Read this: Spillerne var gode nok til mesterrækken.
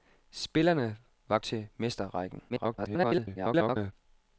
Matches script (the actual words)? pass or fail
fail